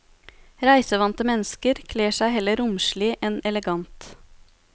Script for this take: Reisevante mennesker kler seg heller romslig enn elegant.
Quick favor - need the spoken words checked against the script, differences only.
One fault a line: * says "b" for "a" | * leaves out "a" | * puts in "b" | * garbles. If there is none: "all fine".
all fine